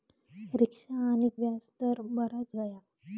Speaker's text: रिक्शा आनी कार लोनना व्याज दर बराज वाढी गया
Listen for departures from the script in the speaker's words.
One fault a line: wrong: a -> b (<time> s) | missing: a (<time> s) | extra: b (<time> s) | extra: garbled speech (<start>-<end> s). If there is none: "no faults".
missing: कार लोनना (1.3 s)
missing: वाढी (2.5 s)